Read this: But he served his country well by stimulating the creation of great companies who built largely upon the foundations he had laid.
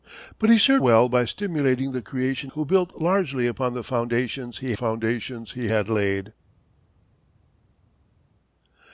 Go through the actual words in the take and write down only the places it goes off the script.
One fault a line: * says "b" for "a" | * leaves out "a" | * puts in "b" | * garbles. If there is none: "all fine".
* leaves out "his country"
* leaves out "of great companies"
* puts in "foundations he"